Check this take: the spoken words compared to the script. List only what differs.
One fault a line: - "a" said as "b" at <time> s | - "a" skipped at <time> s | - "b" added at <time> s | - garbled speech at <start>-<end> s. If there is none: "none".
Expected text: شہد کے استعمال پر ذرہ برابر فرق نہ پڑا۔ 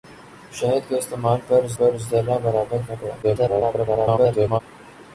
- "پر" added at 1.8 s
- "فرق" skipped at 2.8 s
- garbled speech at 3.2-4.6 s